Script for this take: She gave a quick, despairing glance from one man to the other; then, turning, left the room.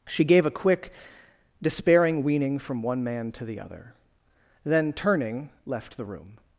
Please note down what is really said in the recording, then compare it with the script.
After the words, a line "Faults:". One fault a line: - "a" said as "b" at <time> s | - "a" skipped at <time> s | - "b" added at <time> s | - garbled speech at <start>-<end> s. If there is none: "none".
She gave a quick, despairing weaning from one man to the other; then, turning, left the room.
Faults:
- "glance" said as "weaning" at 2.2 s